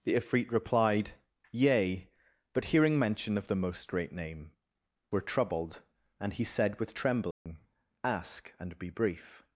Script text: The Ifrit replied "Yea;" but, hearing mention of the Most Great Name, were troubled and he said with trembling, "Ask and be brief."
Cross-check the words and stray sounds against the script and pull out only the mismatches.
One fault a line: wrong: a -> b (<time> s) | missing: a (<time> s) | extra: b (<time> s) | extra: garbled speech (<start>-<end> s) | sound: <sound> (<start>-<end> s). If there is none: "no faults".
sound: dropout (7.3-7.5 s)